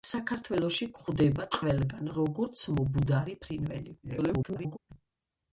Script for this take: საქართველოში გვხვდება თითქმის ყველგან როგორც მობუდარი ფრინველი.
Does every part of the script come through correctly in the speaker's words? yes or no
no